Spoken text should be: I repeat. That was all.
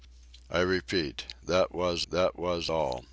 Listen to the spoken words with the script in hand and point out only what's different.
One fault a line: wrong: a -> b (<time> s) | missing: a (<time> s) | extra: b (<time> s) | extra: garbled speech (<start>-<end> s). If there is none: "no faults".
extra: that was (2.1 s)